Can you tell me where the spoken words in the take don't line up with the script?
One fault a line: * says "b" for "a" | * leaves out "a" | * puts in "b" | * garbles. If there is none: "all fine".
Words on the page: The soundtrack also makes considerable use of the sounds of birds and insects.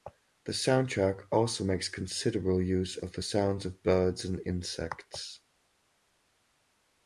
all fine